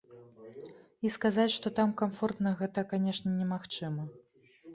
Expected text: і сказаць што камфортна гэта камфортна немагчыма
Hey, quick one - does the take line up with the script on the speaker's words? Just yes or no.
no